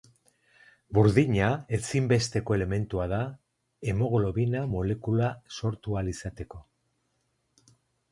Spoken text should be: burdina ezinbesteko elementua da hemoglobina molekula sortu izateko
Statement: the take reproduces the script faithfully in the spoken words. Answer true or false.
false